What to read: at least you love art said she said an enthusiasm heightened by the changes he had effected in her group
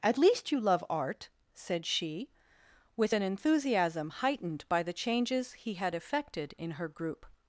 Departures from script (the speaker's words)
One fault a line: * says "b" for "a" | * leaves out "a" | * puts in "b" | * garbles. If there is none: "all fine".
* says "with" for "said"